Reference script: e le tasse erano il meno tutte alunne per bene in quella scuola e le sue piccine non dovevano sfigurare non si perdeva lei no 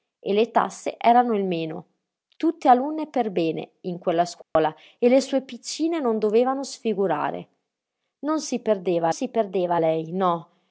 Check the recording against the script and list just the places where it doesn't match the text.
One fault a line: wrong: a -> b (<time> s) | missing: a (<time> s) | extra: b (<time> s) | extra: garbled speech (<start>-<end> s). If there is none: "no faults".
extra: si perdeva (9.1 s)